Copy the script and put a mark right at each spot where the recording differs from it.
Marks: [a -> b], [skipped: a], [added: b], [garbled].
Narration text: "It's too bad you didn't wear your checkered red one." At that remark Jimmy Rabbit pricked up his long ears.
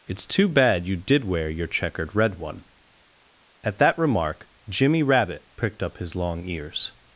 "It's too bad you [didn't -> did] wear your checkered red one." At that remark Jimmy Rabbit pricked up his long ears.